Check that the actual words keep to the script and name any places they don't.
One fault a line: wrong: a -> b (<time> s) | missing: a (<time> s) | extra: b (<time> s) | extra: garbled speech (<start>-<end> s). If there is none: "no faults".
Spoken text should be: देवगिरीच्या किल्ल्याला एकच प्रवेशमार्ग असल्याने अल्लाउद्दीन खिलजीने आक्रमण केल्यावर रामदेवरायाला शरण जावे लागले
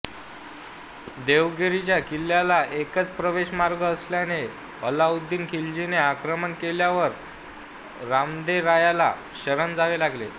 no faults